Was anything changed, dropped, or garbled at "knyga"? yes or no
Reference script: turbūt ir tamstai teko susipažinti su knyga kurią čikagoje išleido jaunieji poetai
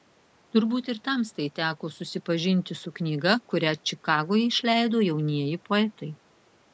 no